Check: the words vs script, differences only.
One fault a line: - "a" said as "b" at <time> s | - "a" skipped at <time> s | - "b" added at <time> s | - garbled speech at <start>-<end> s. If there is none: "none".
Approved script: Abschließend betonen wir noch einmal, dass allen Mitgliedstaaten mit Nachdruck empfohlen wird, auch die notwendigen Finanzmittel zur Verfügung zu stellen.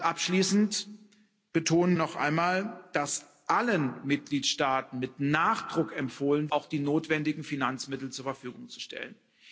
- "wir" skipped at 2.0 s
- "wird" skipped at 6.5 s